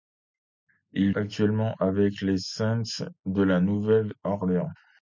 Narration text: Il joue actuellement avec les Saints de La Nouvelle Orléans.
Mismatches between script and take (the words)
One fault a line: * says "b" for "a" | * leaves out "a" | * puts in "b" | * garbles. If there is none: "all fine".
* leaves out "joue"